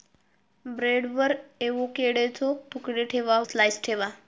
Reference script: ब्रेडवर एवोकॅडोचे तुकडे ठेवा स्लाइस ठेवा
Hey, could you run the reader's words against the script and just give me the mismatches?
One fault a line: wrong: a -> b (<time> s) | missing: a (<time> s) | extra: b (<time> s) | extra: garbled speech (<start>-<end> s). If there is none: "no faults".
no faults